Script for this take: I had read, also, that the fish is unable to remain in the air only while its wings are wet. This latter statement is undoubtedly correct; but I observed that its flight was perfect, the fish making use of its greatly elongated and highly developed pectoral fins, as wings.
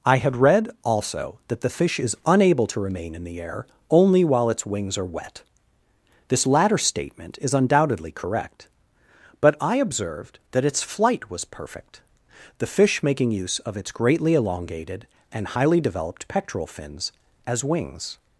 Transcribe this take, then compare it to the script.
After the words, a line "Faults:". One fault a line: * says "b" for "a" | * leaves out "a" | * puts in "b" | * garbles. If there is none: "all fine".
I had read, also, that the fish is unable to remain in the air only while its wings are wet. This latter statement is undoubtedly correct; but I observed that its flight was perfect, the fish making use of its greatly elongated and highly developed pectoral fins, as wings.
Faults:
all fine